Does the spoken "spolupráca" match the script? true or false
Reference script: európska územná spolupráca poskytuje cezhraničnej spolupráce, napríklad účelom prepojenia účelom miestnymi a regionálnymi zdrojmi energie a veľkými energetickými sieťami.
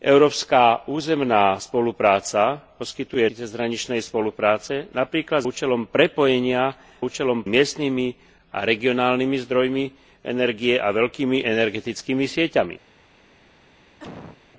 true